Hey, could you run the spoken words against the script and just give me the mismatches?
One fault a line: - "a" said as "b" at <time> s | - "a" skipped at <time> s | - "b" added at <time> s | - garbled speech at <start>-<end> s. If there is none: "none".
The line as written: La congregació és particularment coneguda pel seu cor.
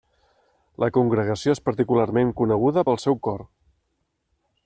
none